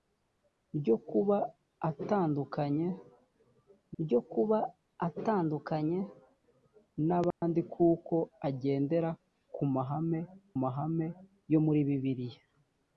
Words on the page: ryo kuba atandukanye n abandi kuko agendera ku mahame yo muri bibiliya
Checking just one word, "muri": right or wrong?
right